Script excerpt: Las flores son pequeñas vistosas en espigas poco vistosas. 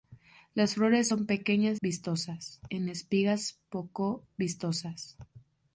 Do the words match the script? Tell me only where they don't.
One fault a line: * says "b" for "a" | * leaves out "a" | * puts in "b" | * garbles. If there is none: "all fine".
all fine